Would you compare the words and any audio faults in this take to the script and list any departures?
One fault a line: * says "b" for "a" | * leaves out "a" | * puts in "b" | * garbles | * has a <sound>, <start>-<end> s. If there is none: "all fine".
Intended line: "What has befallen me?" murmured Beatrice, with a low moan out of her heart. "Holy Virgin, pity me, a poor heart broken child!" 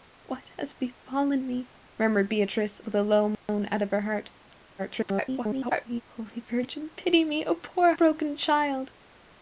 * has a dropout, 3.3-3.5 s
* garbles
* leaves out "heart"